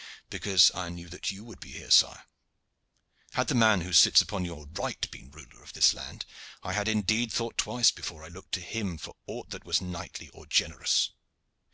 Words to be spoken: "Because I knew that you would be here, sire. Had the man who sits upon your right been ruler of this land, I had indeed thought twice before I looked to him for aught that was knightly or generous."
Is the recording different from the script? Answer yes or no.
no